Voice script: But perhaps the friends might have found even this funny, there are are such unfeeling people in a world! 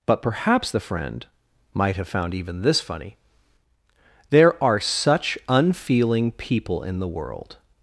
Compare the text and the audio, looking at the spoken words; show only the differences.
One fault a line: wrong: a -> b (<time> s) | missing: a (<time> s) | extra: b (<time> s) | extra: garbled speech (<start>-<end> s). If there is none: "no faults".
wrong: friends -> friend (0.8 s)
missing: are (4.8 s)
wrong: a -> the (7.0 s)